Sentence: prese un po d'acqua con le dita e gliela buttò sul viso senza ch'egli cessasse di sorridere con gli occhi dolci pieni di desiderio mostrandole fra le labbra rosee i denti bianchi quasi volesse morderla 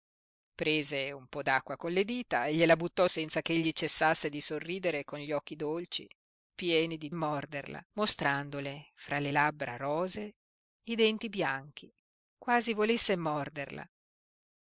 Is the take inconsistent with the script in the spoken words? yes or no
yes